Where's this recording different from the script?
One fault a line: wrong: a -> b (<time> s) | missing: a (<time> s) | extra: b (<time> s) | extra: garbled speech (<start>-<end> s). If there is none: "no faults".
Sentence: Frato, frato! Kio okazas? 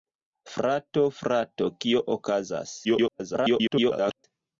extra: garbled speech (2.8-4.2 s)